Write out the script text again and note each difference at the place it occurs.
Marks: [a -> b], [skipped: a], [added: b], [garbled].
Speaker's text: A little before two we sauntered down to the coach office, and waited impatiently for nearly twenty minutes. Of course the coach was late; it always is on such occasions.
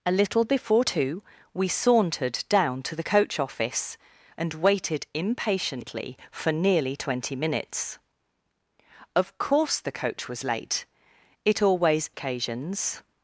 A little before two we sauntered down to the coach office, and waited impatiently for nearly twenty minutes. Of course the coach was late; it always [skipped: is on such] occasions.